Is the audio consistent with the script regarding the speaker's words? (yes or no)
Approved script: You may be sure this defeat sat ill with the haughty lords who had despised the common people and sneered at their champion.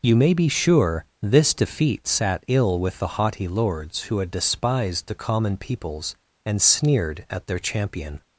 no